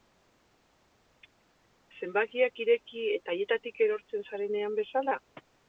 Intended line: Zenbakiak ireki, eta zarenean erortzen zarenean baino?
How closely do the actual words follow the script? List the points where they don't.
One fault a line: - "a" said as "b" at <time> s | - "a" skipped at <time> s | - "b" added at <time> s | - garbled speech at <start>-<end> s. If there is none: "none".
- "zarenean" said as "haietatik" at 3.4 s
- "baino" said as "bezala" at 4.8 s